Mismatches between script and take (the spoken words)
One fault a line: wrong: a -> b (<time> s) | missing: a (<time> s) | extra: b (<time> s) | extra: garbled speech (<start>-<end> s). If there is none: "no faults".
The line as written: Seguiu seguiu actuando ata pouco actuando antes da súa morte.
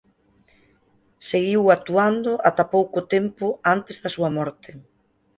missing: seguiu (1.6 s)
wrong: actuando -> tempo (3.1 s)